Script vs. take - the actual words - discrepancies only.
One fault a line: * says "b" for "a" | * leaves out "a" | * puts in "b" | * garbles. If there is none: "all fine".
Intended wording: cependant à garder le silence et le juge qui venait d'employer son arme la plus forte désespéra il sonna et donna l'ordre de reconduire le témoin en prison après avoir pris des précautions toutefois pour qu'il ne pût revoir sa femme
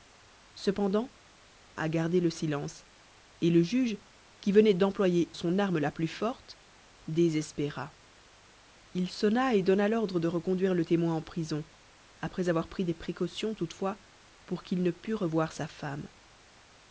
all fine